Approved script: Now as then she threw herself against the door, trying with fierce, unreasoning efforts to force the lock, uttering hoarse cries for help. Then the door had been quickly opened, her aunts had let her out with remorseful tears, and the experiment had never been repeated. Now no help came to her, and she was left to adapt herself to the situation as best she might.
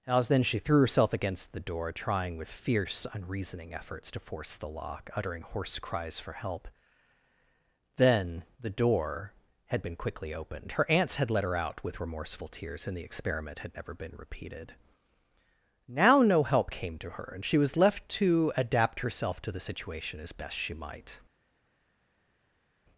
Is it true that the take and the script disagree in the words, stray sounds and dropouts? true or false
true